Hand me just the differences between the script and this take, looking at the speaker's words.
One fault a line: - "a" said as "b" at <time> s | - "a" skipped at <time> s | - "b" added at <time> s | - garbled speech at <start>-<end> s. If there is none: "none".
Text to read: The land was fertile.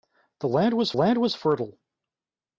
- "land was" added at 0.9 s